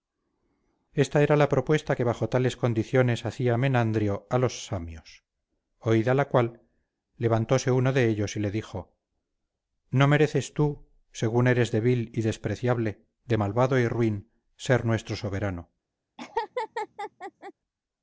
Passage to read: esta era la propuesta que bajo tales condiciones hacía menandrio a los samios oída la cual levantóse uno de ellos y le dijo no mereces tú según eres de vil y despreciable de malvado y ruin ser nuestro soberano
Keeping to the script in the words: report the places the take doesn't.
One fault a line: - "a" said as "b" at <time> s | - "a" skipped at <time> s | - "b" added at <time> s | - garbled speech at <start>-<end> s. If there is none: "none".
none